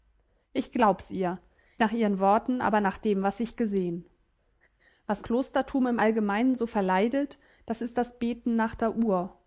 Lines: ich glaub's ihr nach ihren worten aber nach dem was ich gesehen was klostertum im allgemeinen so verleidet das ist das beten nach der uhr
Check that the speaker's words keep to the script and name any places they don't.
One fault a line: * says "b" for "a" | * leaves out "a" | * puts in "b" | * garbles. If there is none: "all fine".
all fine